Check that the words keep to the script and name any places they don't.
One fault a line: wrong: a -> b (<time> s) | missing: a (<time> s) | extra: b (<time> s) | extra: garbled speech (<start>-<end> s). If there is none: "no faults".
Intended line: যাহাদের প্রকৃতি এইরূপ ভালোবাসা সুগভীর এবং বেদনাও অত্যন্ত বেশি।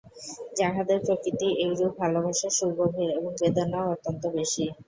no faults